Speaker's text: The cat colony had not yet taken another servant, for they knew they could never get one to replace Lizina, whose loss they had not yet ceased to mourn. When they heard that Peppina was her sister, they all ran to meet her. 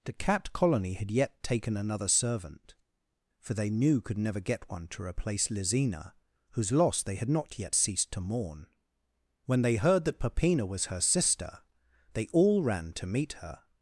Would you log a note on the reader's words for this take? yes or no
yes